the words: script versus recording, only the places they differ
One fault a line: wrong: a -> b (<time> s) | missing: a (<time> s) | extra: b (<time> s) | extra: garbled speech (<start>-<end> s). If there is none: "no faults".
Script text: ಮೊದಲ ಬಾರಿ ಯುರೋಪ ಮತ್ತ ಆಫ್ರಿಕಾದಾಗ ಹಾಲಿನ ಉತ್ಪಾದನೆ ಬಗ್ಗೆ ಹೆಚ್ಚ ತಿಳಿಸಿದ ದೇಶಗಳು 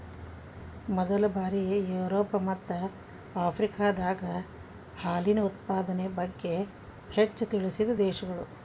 no faults